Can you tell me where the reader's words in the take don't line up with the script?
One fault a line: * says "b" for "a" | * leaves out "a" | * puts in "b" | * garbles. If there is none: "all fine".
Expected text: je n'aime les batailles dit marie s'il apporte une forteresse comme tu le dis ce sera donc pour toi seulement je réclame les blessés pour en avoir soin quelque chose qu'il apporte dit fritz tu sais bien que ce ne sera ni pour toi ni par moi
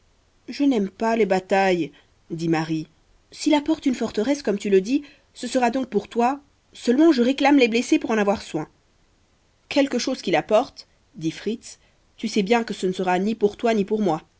* puts in "pas"
* says "pour" for "par"